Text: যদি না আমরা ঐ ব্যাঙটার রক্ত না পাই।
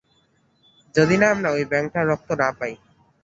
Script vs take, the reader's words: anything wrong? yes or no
no